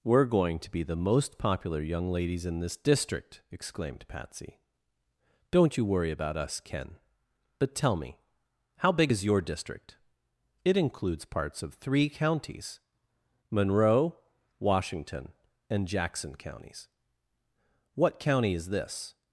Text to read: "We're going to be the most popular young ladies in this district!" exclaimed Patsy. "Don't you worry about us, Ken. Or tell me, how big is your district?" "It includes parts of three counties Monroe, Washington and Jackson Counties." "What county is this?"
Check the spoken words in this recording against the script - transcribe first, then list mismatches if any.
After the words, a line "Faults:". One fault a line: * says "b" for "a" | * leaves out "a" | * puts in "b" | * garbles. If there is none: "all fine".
"We're going to be the most popular young ladies in this district!" exclaimed Patsy. "Don't you worry about us, Ken. But tell me, how big is your district?" "It includes parts of three counties Monroe, Washington and Jackson Counties." "What county is this?"
Faults:
* says "But" for "Or"